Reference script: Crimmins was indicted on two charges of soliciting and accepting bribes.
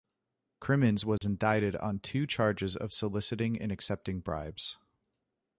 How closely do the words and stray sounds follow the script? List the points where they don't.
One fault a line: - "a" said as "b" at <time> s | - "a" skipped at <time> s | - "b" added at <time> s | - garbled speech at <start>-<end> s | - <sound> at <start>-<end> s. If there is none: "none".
- dropout at 1.2-1.2 s